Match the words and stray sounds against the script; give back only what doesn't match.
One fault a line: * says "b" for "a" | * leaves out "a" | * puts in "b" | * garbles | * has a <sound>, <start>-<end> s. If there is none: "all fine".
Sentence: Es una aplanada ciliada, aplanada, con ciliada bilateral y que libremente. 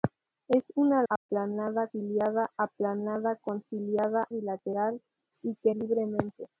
* has a dropout, 1.2-1.3 s